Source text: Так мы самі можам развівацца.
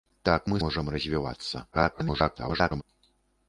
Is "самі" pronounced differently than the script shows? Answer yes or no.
yes